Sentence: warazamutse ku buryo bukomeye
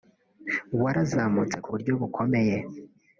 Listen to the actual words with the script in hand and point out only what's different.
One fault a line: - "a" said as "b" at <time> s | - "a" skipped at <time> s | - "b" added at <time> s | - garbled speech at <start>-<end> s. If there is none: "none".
none